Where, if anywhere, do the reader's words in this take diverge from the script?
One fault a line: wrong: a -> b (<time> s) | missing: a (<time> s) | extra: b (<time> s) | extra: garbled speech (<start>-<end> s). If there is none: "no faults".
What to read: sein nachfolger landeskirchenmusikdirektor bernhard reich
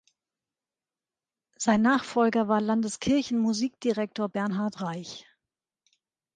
extra: war (2.5 s)